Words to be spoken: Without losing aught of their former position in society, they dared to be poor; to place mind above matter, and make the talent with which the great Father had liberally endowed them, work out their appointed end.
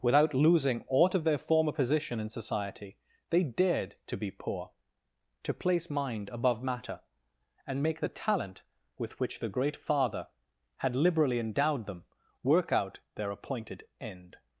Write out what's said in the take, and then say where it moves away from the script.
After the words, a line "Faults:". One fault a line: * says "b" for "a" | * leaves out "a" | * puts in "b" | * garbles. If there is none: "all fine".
Without losing aught of their former position in society, they dared to be poor; to place mind above matter, and make the talent with which the great Father had liberally endowed them, work out their appointed end.
Faults:
all fine